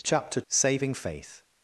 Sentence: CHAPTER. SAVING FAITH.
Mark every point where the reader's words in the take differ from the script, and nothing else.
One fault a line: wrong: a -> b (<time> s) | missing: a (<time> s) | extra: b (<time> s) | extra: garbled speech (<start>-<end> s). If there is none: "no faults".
no faults